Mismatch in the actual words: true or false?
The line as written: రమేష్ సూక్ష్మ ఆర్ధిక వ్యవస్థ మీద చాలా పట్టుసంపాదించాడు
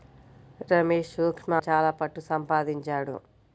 true